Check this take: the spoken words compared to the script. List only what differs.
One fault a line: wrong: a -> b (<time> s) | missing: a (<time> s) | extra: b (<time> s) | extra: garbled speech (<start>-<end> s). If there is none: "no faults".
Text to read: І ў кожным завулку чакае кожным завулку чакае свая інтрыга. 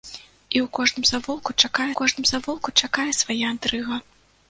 no faults